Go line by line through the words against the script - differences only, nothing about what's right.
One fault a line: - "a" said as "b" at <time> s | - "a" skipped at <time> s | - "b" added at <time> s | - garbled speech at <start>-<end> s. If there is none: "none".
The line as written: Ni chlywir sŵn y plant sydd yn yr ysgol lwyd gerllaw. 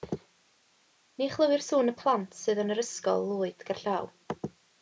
none